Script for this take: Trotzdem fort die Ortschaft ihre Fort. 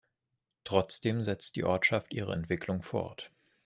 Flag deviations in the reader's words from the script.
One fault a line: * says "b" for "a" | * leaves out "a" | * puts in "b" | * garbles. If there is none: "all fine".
* says "setzt" for "fort"
* puts in "Entwicklung"